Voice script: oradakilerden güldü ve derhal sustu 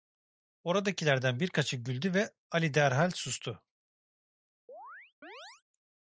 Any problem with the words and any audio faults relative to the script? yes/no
yes